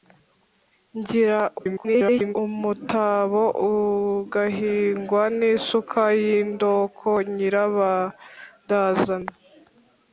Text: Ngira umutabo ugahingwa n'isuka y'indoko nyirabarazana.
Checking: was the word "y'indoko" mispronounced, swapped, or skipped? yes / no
no